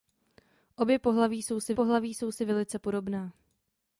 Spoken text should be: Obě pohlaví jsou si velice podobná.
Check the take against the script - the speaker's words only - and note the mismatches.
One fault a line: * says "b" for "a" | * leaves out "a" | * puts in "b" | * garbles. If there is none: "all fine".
* puts in "pohlaví jsou si"